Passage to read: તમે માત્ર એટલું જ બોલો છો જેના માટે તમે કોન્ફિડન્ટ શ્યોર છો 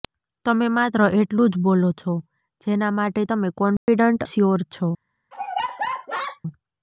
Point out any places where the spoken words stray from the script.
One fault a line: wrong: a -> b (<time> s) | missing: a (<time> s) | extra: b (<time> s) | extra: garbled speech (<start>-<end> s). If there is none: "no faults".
no faults